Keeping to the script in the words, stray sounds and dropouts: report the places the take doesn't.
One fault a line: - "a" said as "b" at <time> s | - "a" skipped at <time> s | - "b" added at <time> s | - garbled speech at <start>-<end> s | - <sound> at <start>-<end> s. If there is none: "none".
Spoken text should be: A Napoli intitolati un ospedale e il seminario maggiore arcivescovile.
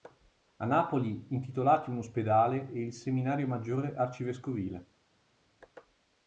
none